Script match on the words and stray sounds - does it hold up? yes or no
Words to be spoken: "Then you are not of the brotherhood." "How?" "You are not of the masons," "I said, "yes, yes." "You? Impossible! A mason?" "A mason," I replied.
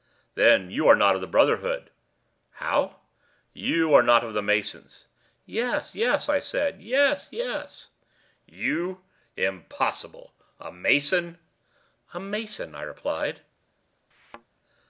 no